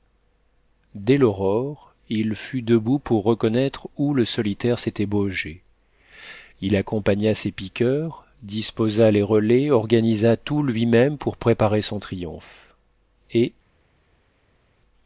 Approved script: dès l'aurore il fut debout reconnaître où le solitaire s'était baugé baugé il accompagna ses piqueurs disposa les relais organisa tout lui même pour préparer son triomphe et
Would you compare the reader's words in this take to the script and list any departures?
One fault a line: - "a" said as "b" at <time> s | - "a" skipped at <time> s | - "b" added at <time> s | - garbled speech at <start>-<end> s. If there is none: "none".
- "pour" added at 3.0 s
- "baugé" skipped at 5.6 s